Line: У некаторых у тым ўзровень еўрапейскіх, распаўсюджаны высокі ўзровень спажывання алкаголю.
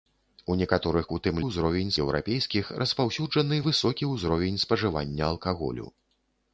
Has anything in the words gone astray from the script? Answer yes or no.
no